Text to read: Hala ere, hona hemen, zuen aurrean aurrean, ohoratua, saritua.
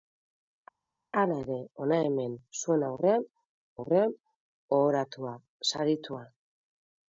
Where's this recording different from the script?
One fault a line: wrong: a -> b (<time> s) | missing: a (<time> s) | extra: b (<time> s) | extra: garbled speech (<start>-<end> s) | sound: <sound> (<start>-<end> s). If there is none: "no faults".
no faults